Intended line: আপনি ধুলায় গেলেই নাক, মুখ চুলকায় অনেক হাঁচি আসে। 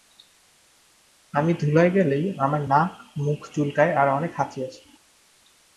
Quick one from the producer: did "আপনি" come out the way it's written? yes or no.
no